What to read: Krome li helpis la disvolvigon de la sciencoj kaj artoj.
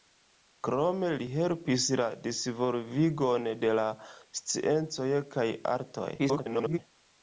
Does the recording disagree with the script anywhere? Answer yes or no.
yes